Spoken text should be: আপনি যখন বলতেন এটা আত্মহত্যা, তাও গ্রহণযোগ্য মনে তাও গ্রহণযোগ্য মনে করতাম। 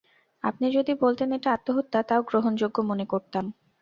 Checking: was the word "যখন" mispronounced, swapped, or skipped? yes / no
yes